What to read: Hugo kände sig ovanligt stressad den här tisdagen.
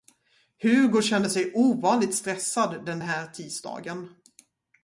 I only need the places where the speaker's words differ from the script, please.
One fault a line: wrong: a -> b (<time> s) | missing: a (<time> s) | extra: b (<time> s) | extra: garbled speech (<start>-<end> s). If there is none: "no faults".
no faults